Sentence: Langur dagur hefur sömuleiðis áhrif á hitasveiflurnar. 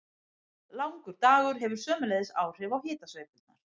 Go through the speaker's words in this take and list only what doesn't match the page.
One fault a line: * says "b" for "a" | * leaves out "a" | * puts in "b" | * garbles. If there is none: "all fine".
all fine